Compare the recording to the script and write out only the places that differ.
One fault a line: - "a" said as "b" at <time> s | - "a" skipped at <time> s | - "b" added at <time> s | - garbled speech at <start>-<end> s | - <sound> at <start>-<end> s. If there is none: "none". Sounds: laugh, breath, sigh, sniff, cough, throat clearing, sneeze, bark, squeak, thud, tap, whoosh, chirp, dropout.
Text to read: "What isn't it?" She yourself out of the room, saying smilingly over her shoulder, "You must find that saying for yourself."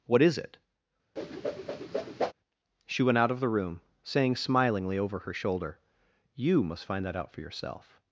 - "isn't" said as "is" at 0.2 s
- whoosh at 1.2-2.3 s
- "yourself" said as "went" at 3.0 s
- "saying" said as "out" at 7.2 s